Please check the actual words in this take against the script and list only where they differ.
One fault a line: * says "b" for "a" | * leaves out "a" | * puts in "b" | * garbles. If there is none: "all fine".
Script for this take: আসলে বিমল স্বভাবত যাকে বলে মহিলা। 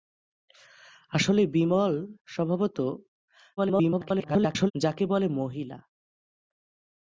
* garbles